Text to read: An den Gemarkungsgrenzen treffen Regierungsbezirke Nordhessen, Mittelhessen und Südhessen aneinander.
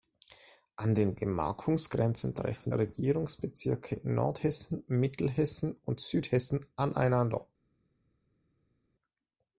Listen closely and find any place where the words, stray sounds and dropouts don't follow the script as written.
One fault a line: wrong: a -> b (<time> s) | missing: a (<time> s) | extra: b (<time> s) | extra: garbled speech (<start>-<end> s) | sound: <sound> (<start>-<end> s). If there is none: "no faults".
no faults